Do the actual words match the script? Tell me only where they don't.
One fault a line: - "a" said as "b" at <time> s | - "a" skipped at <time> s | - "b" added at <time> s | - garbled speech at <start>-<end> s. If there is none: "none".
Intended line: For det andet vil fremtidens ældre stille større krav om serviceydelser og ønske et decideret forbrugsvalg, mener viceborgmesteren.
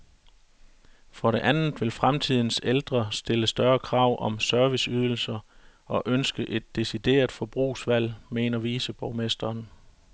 none